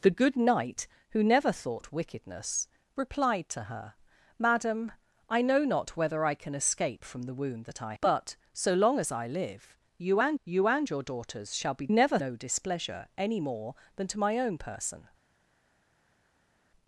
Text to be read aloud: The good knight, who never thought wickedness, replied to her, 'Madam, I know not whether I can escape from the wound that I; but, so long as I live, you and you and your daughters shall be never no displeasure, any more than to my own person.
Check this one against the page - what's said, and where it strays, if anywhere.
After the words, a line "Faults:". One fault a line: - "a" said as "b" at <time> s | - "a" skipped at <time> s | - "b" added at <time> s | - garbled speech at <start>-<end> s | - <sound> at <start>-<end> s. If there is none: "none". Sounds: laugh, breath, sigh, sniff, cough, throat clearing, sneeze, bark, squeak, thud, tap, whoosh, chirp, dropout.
The good knight, who never thought wickedness, replied to her, 'Madam, I know not whether I can escape from the wound that I; but, so long as I live, you and you and your daughters shall be never no displeasure, any more than to my own person.
Faults:
none